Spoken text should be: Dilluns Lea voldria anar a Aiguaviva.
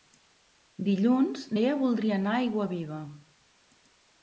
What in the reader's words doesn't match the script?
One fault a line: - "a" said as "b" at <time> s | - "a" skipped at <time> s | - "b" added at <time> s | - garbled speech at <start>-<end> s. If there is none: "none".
none